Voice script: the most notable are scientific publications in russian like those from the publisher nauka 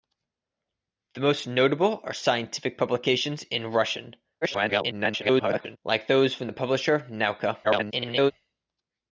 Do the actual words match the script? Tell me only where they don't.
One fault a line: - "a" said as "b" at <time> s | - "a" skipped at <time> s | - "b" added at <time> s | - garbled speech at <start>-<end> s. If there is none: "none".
- garbled speech at 4.4-5.8 s
- garbled speech at 7.6-8.3 s